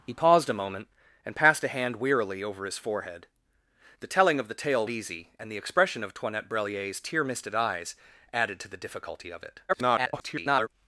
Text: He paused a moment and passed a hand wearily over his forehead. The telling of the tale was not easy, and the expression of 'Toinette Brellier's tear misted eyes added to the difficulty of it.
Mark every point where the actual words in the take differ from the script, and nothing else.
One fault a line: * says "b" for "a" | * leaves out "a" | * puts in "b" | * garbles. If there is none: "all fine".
* leaves out "was not"
* garbles